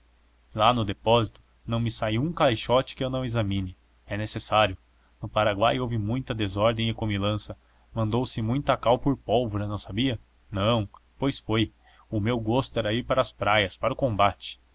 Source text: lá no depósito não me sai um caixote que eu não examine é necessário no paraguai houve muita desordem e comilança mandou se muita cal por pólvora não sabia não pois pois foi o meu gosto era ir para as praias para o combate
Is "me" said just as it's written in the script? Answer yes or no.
yes